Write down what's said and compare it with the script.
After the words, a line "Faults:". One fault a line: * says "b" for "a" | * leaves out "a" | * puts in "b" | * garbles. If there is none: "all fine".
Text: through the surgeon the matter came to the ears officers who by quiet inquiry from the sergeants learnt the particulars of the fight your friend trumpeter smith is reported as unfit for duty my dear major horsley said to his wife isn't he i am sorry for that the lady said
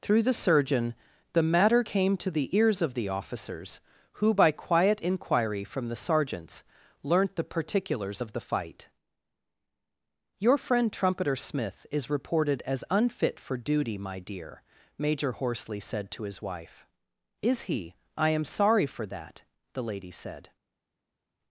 through the surgeon the matter came to the ears of the officers who by quiet inquiry from the sergeants learnt the particulars of the fight your friend trumpeter smith is reported as unfit for duty my dear major horsley said to his wife is he i am sorry for that the lady said
Faults:
* puts in "of the"
* says "is" for "isn't"